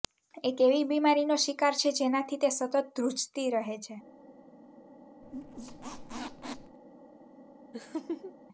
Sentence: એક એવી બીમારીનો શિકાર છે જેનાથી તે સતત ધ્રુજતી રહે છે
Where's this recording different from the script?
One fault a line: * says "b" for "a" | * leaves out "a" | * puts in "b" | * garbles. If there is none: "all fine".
all fine